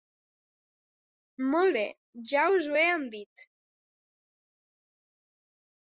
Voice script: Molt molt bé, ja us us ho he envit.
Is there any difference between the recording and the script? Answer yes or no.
yes